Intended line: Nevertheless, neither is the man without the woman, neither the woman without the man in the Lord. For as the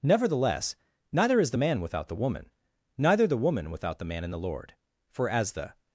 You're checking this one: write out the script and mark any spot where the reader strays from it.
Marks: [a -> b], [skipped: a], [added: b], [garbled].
Nevertheless, neither is the man without the woman, neither the woman without the man in the Lord. For as the